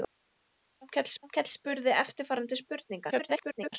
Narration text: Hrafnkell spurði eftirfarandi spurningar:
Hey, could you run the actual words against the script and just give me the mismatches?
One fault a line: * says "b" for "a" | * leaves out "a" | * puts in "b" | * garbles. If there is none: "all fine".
* puts in "hrafnkell"
* garbles